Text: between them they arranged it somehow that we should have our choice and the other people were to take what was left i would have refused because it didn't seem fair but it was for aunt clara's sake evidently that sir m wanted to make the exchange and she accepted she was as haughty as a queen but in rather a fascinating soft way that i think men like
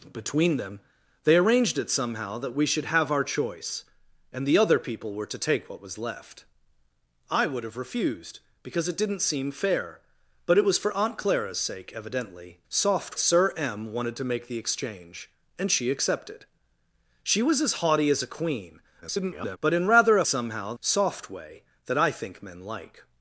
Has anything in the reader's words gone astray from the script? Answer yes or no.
yes